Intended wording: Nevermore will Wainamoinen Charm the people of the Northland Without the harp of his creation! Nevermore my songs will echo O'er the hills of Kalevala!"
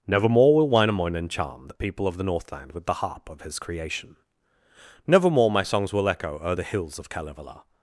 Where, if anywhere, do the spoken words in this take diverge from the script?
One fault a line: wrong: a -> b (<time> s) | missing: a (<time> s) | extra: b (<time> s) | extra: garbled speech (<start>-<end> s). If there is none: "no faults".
wrong: Without -> With (2.7 s)